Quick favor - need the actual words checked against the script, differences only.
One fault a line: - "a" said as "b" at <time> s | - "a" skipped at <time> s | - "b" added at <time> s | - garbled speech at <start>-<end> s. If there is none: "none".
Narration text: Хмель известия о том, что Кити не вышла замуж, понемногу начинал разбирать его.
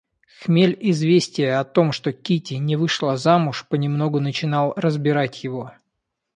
none